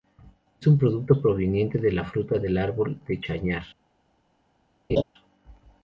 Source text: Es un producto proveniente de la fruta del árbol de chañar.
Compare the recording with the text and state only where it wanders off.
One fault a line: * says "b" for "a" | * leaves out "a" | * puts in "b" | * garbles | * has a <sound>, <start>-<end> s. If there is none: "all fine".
* has a laugh, 4.9-5.0 s